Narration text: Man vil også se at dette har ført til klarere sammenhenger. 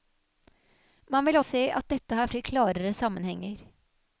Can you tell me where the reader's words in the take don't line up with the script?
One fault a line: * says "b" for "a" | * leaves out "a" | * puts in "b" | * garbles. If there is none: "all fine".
* leaves out "også"
* leaves out "ført"